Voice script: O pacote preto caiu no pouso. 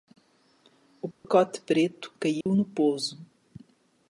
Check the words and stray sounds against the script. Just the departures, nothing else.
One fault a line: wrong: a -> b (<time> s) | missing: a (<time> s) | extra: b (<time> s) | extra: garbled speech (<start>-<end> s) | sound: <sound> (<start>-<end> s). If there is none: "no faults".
sound: dropout (1.1-1.2 s)
sound: dropout (2.4-2.5 s)